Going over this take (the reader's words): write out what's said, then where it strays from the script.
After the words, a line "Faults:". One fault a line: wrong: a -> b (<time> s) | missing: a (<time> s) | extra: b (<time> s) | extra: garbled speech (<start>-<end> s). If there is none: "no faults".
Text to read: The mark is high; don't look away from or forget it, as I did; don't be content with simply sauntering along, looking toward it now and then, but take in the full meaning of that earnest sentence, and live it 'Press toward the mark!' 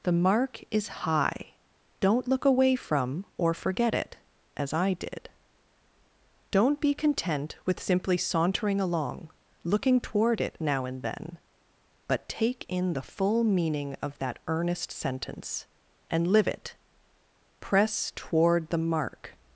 The mark is high; don't look away from or forget it, as I did; don't be content with simply sauntering along, looking toward it now and then, but take in the full meaning of that earnest sentence, and live it 'Press toward the mark!'
Faults:
no faults